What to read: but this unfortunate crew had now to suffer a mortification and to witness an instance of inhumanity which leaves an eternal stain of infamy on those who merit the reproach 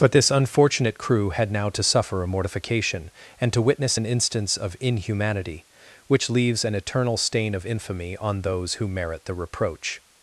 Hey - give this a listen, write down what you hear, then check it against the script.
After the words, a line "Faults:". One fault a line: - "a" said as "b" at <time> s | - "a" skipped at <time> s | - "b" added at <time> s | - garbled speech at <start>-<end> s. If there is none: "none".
but this unfortunate crew had now to suffer a mortification and to witness an instance of inhumanity which leaves an eternal stain of infamy on those who merit the reproach
Faults:
none